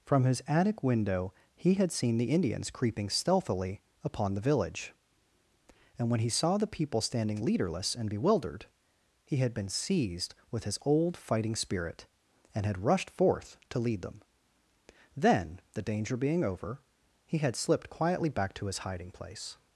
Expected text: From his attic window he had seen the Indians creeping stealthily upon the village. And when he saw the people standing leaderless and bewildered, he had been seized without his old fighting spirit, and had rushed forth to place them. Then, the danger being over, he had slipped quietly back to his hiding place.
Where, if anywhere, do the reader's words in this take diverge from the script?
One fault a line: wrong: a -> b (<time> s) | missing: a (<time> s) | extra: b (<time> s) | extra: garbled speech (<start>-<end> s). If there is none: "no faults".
wrong: without -> with (10.5 s)
wrong: place -> lead (13.8 s)